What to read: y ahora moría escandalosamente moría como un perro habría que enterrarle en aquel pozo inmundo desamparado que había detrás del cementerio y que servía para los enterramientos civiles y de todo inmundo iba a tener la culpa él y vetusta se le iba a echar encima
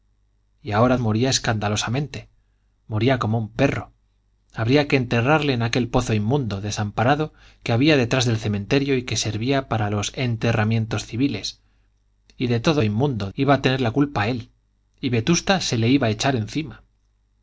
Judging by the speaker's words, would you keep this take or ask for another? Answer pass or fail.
pass